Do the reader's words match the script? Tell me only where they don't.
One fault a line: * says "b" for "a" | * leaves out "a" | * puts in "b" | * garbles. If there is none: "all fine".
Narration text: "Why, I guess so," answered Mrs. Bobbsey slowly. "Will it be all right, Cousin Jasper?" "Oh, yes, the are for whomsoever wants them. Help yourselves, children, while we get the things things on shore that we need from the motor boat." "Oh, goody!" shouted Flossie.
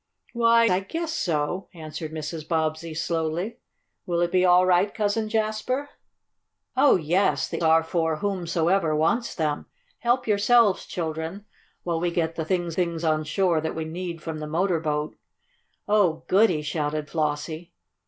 all fine